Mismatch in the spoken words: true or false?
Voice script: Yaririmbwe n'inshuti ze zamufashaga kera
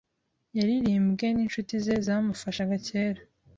false